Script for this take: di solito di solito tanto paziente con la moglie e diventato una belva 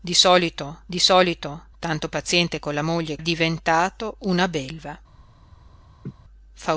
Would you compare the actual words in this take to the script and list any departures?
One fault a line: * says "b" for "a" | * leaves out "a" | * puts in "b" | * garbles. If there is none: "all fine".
all fine